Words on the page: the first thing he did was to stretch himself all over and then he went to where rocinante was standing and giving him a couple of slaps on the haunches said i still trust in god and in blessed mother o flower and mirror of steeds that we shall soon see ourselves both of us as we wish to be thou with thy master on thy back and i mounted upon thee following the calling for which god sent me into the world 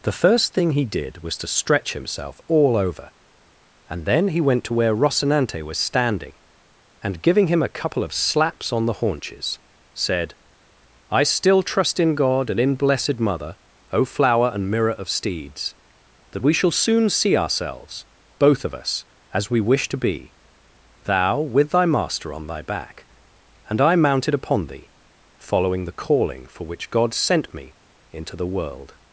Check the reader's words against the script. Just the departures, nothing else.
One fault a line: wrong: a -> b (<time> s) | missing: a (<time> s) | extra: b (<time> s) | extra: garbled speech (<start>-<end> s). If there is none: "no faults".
no faults